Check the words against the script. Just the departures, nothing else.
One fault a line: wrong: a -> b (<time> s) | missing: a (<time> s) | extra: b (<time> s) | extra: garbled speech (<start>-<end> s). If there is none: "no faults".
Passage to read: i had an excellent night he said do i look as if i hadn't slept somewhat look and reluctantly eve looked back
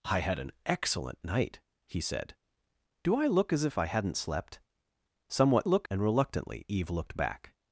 no faults